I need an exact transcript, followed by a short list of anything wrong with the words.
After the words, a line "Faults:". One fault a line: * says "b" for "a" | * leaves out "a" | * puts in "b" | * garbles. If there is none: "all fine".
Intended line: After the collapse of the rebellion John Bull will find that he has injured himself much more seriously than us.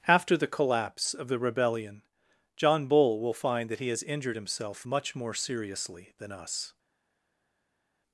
After the collapse of the rebellion John Bull will find that he has injured himself much more seriously than us.
Faults:
all fine